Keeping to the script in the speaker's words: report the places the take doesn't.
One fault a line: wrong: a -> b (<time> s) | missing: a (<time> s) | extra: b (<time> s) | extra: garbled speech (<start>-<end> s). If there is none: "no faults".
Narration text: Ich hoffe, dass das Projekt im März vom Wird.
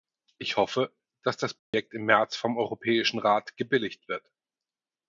extra: Europäischen Rat gebilligt (2.6 s)